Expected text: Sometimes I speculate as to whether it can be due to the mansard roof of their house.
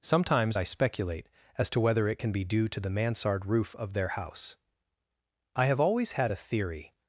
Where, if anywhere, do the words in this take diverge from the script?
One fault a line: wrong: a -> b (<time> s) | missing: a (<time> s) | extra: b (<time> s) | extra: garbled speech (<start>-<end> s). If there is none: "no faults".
extra: I have always had a theory (5.5 s)